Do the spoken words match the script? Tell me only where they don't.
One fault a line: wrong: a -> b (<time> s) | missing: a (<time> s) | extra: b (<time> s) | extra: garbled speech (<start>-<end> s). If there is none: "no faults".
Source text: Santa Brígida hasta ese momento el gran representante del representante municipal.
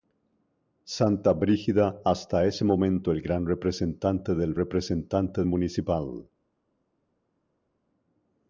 no faults